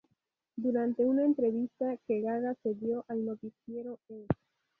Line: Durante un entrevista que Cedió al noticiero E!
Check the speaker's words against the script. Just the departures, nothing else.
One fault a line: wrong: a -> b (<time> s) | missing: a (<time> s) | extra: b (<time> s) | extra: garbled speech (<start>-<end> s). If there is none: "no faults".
wrong: un -> una (1.1 s)
extra: Gaga (2.2 s)